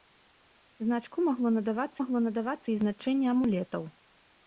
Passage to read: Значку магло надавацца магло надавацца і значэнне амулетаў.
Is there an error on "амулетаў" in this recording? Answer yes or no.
no